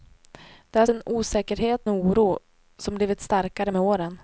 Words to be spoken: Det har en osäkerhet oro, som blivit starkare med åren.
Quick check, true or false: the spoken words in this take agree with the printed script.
true